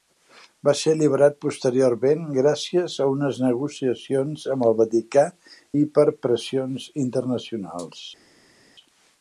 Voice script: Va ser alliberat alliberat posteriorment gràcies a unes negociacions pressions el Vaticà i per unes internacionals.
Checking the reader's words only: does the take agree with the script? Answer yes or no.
no